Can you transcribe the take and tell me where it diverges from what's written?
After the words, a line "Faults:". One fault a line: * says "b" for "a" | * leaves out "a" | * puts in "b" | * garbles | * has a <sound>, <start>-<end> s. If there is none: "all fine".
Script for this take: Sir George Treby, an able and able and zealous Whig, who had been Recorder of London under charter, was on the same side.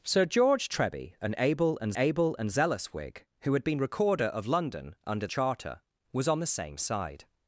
Sir George Treby, an able and able and zealous Whig, who had been Recorder of London under charter, was on the same side.
Faults:
all fine